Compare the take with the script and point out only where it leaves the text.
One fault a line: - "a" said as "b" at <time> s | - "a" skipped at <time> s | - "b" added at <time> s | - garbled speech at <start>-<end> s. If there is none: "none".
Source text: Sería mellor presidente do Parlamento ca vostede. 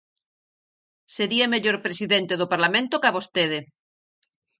none